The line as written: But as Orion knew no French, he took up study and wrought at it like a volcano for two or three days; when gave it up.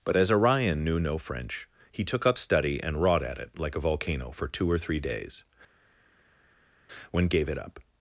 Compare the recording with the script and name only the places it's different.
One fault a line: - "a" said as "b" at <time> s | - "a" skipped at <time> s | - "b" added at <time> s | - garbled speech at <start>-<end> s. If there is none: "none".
none